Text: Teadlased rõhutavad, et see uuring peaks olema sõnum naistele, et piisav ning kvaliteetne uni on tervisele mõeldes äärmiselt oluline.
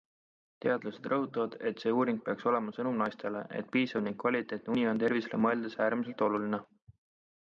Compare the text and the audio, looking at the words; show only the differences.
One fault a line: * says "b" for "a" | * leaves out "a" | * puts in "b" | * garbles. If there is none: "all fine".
all fine